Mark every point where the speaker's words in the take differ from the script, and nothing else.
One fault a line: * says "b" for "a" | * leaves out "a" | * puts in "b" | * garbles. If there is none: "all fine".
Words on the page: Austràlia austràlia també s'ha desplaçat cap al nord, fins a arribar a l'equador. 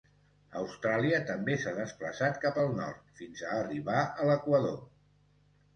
* leaves out "austràlia"